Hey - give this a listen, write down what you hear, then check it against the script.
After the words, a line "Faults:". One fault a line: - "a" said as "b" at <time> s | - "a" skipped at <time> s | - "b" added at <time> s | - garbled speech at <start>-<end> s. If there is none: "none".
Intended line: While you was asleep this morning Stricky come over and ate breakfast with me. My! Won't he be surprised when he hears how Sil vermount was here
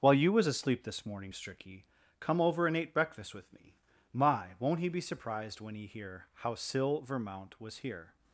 While you was asleep this morning Stricky come over and ate breakfast with me. My! Won't he be surprised when he hear how Sil vermount was here
Faults:
- "hears" said as "hear" at 5.9 s